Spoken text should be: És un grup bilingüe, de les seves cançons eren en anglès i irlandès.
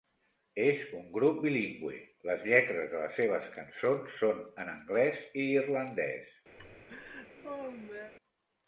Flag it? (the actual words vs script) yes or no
yes